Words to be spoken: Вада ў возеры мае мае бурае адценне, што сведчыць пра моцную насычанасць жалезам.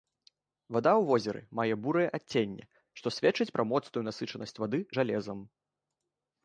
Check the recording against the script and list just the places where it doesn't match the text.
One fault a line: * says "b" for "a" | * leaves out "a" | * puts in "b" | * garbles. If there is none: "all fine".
* leaves out "мае"
* puts in "вады"